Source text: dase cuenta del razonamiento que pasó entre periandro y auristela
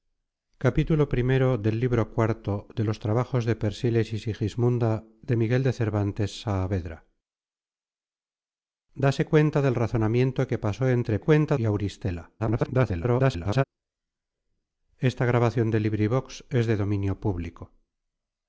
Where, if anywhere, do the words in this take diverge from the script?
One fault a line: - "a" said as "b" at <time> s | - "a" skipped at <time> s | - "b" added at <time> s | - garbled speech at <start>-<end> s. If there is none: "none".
- "periandro" said as "cuenta" at 11.2 s
- garbled speech at 12.4-13.6 s